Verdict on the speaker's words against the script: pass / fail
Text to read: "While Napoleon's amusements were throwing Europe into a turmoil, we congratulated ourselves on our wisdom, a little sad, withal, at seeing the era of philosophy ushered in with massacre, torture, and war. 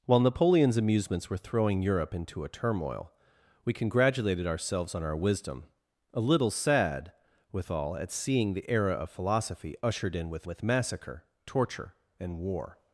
fail